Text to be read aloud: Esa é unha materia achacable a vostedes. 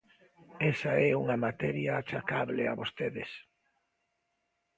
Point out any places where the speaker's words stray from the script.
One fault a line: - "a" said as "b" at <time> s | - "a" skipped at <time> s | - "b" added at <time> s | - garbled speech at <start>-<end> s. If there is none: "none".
none